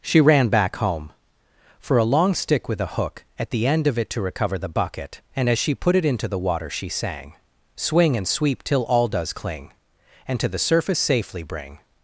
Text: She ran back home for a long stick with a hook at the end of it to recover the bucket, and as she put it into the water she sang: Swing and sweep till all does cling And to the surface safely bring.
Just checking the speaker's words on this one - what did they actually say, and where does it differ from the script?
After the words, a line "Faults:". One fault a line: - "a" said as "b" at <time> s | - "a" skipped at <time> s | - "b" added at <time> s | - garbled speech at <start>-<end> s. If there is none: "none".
She ran back home for a long stick with a hook at the end of it to recover the bucket, and as she put it into the water she sang: Swing and sweep till all does cling And to the surface safely bring.
Faults:
none